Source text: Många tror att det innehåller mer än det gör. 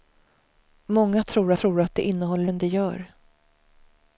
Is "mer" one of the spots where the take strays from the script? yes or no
yes